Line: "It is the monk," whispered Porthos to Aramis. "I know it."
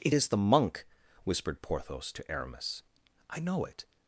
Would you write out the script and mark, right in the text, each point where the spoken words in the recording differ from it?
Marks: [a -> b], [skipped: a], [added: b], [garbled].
"It is the monk," whispered Porthos to Aramis. "I know it."